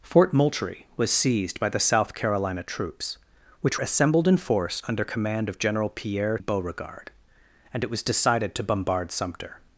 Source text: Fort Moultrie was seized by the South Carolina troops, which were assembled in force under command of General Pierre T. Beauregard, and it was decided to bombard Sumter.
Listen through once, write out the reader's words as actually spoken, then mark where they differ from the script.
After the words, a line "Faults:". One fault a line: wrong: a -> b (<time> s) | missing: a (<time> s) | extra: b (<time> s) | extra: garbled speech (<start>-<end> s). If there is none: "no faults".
Fort Moultrie was seized by the South Carolina troops, which assembled in force under command of General Pierre. Beauregard, and it was decided to bombard Sumter.
Faults:
missing: were (3.8 s)
missing: T (6.4 s)